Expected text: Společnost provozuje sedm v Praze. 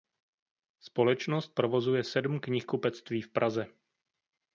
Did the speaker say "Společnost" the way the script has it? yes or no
yes